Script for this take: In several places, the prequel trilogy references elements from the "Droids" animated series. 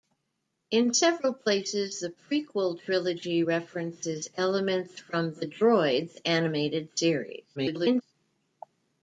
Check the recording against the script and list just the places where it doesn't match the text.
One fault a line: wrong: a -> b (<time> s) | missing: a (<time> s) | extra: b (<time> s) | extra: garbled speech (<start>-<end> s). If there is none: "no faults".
extra: garbled speech (7.6-8.0 s)